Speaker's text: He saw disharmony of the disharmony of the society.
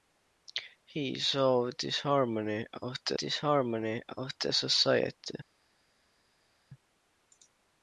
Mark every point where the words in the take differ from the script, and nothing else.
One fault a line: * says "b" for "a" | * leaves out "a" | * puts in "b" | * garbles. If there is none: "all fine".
all fine